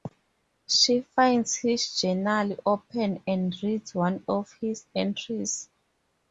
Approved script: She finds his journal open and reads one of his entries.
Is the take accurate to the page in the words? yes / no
yes